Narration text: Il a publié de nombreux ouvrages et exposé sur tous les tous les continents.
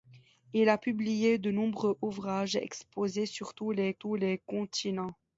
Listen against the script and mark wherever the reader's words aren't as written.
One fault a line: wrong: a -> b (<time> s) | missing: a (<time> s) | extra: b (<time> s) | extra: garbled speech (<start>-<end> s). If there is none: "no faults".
no faults